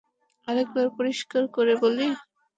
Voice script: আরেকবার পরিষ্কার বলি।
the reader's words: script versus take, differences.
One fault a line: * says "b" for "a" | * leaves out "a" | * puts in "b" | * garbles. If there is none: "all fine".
* puts in "করে"